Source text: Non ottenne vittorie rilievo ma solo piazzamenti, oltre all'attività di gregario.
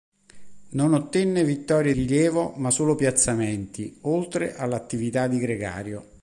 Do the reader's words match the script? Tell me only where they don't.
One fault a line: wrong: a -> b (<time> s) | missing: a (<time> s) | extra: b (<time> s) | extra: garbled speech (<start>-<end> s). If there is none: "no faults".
no faults